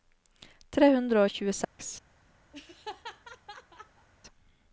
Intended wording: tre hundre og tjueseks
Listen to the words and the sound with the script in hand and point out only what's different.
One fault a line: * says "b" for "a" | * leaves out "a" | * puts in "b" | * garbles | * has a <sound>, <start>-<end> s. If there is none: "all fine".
* has a dropout, 1.6-1.8 s
* has a laugh, 2.5-4.1 s